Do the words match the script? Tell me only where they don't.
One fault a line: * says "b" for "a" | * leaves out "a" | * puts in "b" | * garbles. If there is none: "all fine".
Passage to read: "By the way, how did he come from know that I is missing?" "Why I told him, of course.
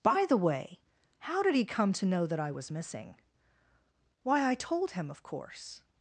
* says "to" for "from"
* says "was" for "is"